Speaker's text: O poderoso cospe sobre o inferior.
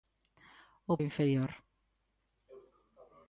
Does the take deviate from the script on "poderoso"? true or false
true